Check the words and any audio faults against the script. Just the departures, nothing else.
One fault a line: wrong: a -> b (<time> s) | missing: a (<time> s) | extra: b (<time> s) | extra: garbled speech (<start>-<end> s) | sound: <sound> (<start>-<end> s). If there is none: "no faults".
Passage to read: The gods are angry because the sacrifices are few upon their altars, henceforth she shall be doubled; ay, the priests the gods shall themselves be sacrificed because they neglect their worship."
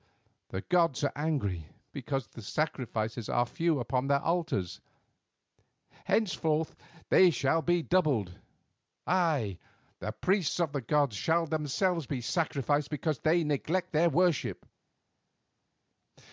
wrong: she -> they (7.1 s)
extra: of (10.6 s)